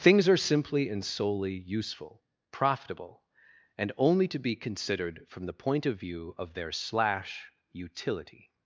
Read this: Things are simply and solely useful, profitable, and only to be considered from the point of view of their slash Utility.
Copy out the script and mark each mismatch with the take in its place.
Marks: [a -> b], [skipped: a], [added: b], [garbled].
Things are simply and solely useful, profitable, and only to be considered from the point of view of their slash Utility.